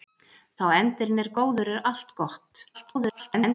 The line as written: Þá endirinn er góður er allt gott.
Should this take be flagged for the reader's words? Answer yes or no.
yes